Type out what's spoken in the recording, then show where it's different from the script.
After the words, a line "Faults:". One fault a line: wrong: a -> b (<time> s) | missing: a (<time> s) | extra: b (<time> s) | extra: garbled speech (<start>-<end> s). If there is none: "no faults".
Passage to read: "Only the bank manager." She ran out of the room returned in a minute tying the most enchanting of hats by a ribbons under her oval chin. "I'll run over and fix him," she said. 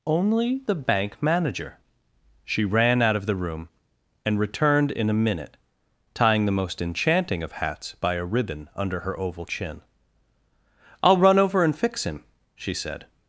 "Only the bank manager." She ran out of the room and returned in a minute tying the most enchanting of hats by a ribbon under her oval chin. "I'll run over and fix him," she said.
Faults:
extra: and (4.2 s)
wrong: ribbons -> ribbon (8.2 s)